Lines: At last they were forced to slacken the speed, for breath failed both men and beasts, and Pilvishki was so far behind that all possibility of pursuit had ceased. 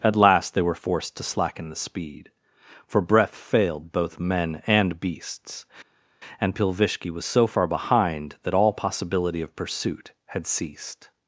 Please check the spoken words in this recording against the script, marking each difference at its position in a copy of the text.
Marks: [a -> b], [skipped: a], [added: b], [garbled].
At last they were forced to slacken the speed, for breath failed both men and beasts, and Pilvishki was so far behind that all possibility of pursuit had ceased.